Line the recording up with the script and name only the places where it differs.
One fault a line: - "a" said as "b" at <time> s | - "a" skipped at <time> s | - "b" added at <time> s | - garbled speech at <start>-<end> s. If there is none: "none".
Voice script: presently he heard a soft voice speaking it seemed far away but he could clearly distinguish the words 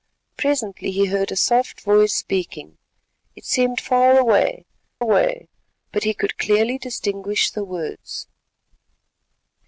- "away" added at 5.0 s